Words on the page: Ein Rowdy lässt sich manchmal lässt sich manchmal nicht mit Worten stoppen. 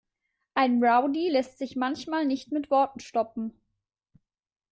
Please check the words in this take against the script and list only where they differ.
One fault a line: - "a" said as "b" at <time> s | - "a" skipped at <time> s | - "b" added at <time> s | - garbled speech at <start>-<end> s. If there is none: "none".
- "lässt sich manchmal" skipped at 2.2 s